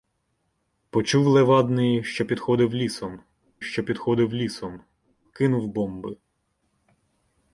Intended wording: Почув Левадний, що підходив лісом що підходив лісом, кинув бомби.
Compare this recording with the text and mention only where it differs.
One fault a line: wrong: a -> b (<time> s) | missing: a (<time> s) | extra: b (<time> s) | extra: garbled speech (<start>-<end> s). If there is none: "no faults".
no faults